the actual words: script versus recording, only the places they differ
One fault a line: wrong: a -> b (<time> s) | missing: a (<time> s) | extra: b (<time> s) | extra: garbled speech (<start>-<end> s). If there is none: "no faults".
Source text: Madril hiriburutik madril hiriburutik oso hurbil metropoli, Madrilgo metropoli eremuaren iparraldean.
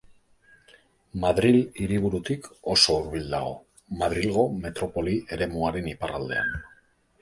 missing: madril hiriburutik (2.5 s)
wrong: metropoli -> dago (3.4 s)